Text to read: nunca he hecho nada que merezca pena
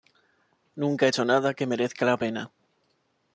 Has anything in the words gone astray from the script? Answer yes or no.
yes